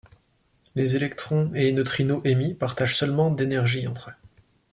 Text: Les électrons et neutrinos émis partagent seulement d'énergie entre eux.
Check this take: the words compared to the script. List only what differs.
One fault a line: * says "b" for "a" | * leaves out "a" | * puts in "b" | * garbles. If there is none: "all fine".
all fine